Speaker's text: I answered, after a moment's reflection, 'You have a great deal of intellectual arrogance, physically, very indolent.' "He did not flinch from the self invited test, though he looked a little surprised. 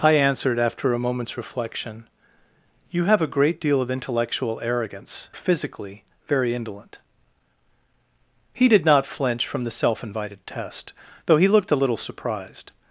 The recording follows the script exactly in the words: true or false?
true